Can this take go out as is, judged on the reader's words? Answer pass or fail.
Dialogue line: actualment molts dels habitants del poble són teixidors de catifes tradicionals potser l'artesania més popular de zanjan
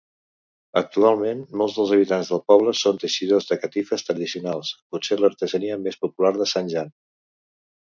pass